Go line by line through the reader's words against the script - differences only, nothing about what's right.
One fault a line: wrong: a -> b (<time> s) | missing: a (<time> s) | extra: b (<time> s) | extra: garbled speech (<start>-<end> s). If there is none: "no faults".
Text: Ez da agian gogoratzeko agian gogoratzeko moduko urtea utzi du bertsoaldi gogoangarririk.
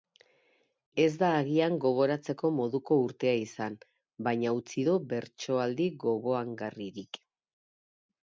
wrong: agian gogoratzeko moduko urtea -> moduko urtea izan baina (2.6 s)